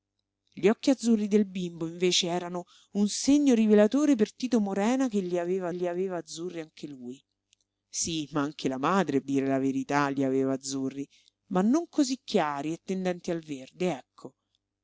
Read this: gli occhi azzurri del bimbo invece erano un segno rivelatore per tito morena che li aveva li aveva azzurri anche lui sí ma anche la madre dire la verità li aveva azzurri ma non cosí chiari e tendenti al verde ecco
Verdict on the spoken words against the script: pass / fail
pass